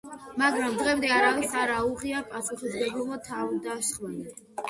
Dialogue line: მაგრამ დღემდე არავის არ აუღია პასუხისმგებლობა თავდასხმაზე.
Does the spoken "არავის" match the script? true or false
true